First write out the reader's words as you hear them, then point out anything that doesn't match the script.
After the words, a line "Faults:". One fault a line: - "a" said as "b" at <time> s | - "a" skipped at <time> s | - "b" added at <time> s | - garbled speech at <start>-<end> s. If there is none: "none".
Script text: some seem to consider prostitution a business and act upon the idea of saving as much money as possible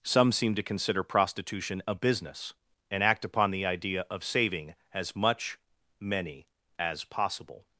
some seem to consider prostitution a business and act upon the idea of saving as much many as possible
Faults:
- "money" said as "many" at 6.0 s